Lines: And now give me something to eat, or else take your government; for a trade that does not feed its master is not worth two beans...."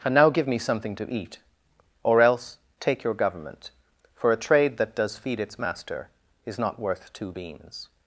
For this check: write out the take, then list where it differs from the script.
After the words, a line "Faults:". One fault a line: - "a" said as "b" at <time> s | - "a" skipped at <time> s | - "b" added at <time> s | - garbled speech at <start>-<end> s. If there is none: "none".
And now give me something to eat, or else take your government; for a trade that does feed its master is not worth two beans...."
Faults:
- "not" skipped at 5.2 s